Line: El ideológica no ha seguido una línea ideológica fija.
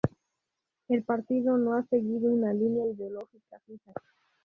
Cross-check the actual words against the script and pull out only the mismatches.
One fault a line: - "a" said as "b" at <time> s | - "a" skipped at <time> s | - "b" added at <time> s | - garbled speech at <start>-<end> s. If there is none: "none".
- "ideológica" said as "partido" at 1.0 s